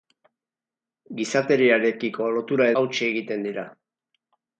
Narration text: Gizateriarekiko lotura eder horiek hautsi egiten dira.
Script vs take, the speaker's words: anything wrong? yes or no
yes